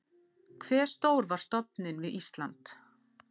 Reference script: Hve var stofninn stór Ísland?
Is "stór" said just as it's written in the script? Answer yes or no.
no